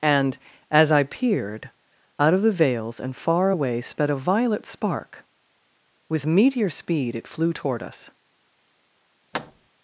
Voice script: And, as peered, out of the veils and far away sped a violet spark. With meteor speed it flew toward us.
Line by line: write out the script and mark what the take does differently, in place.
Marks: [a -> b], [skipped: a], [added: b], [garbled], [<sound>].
And, as [added: I] peered, out of the veils and far away sped a violet spark. With meteor speed it flew toward us. [thud]